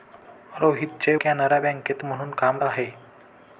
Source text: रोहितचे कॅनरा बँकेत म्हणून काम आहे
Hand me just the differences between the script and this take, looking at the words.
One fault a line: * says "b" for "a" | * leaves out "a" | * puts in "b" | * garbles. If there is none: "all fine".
all fine